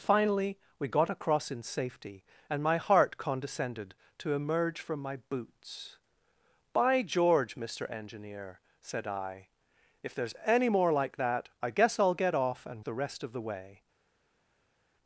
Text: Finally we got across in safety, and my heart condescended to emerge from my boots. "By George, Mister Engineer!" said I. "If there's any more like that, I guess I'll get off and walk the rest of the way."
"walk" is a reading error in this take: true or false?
true